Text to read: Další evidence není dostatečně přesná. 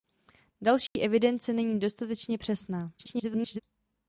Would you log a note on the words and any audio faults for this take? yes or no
yes